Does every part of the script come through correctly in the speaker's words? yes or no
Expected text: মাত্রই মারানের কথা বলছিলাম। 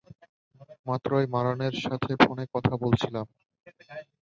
no